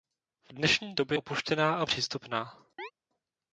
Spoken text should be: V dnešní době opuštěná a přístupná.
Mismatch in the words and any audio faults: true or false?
true